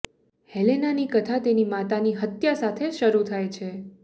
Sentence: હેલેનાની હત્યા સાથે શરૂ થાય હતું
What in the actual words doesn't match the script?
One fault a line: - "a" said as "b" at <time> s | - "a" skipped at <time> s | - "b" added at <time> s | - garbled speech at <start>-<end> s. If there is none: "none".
- "કથા તેની માતાની" added at 1.1 s
- "હતું" said as "છે" at 3.6 s